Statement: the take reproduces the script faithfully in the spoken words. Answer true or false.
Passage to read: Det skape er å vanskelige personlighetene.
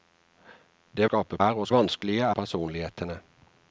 true